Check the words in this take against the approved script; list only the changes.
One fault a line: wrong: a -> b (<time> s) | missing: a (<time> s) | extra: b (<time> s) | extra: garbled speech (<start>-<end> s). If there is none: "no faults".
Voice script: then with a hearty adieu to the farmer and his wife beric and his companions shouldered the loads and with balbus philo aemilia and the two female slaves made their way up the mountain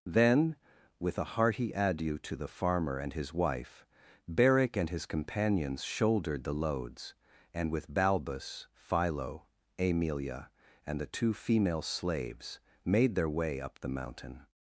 no faults